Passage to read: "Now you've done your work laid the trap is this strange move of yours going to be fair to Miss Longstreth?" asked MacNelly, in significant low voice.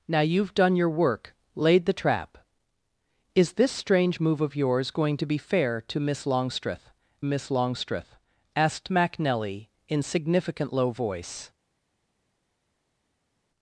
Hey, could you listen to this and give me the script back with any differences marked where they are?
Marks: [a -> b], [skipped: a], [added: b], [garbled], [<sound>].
"Now you've done your work laid the trap is this strange move of yours going to be fair to Miss Longstreth?" [added: Miss Longstreth] asked MacNelly, in significant low voice.